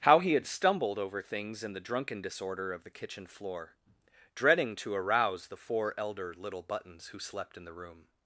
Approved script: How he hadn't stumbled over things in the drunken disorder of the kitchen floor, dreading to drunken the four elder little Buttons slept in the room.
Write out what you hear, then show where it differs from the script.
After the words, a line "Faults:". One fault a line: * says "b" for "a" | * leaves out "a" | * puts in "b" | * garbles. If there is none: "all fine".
How he had stumbled over things in the drunken disorder of the kitchen floor, dreading to arouse the four elder little Buttons who slept in the room.
Faults:
* says "had" for "hadn't"
* says "arouse" for "drunken"
* puts in "who"